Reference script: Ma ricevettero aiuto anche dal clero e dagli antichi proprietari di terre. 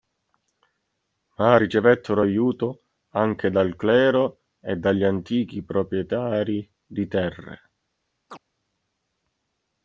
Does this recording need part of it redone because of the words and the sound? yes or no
yes